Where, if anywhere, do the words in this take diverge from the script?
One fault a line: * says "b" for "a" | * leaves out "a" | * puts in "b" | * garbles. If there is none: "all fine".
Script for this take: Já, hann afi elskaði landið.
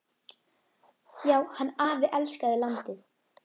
all fine